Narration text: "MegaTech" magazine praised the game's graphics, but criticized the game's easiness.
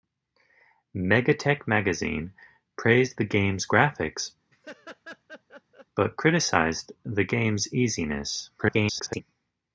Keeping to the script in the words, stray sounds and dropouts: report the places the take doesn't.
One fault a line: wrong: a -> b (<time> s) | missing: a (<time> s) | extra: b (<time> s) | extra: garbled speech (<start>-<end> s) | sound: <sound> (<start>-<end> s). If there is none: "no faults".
sound: laugh (4.5-5.9 s)
extra: garbled speech (8.6-9.2 s)